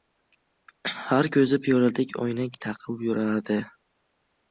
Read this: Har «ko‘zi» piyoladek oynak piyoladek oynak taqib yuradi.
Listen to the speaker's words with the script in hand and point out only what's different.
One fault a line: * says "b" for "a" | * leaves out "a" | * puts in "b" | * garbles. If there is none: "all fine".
* leaves out "piyoladek oynak"